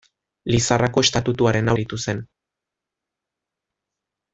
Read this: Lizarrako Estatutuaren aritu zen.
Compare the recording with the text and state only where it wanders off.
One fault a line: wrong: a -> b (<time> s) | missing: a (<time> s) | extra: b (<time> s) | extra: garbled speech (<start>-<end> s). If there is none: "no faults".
no faults